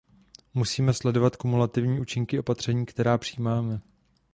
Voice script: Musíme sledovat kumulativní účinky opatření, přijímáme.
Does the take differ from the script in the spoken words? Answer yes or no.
yes